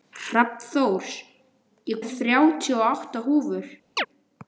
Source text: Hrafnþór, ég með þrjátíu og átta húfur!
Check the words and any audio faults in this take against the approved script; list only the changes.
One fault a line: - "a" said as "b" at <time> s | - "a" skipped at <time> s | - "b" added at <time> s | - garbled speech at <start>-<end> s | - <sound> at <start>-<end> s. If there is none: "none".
- chirp at 4.0-4.1 s